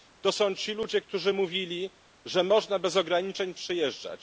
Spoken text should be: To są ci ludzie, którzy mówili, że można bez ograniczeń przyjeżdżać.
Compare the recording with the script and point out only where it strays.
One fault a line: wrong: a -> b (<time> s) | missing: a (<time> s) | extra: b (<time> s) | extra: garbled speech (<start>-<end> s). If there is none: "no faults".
no faults